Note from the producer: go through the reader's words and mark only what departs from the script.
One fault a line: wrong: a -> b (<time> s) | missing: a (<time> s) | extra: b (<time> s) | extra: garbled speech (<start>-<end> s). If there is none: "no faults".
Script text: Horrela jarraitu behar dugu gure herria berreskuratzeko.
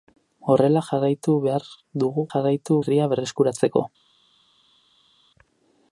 wrong: gure -> jarraitu (2.3 s)